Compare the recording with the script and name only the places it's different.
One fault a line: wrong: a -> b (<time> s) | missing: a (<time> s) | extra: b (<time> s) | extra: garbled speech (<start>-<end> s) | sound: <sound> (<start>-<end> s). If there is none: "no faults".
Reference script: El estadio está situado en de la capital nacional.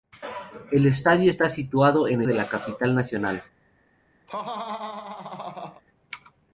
sound: laugh (4.3-5.8 s)